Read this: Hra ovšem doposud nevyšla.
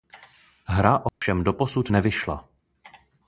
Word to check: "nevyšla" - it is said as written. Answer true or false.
true